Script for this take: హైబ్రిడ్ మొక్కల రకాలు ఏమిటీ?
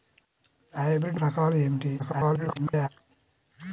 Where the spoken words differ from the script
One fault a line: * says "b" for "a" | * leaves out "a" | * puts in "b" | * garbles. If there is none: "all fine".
* leaves out "మొక్కల"
* garbles